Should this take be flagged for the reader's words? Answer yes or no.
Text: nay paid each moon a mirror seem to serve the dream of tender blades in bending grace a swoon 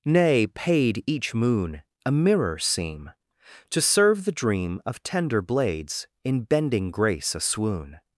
no